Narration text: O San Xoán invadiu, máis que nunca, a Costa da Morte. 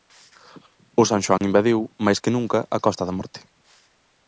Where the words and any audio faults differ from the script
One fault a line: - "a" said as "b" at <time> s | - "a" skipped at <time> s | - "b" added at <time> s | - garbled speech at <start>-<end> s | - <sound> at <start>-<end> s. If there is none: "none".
- dropout at 1.4-1.4 s